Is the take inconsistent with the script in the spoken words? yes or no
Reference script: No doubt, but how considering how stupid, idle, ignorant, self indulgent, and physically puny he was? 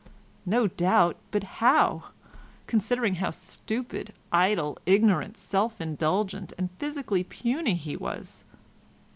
no